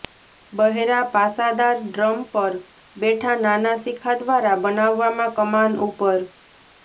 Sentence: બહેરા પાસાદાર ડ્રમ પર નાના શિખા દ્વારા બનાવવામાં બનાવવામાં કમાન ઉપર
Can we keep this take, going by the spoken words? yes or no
no